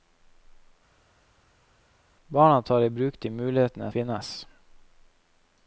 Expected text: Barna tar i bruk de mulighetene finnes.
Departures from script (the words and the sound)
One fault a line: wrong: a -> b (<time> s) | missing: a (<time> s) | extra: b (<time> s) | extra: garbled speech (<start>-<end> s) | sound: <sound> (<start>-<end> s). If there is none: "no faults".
no faults